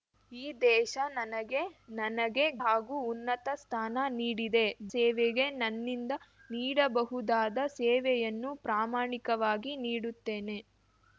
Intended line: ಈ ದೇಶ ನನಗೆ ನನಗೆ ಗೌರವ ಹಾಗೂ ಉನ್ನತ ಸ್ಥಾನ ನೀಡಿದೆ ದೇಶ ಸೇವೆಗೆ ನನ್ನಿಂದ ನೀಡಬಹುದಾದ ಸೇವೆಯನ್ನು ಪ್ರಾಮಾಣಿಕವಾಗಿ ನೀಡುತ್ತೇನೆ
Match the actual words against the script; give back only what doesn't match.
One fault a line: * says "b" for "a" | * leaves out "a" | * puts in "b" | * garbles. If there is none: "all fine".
* leaves out "ಗೌರವ"
* leaves out "ದೇಶ"